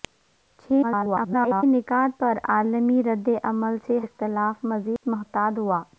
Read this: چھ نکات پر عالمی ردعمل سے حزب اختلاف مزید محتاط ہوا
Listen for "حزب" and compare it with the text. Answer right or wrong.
wrong